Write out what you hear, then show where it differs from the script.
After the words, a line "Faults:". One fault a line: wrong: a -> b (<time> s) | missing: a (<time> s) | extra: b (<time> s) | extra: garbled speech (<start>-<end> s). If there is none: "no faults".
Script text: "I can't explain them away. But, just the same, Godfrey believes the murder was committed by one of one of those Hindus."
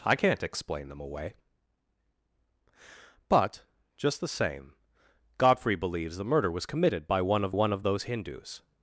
"I can't explain them away. But, just the same, Godfrey believes the murder was committed by one of one of those Hindus."
Faults:
no faults